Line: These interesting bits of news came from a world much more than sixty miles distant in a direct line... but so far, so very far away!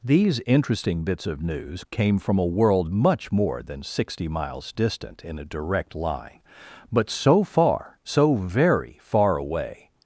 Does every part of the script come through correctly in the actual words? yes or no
yes